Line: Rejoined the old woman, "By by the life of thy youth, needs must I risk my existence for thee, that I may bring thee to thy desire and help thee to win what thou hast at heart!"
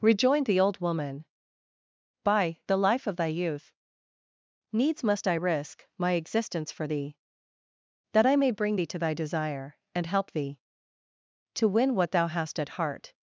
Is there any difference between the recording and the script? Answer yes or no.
yes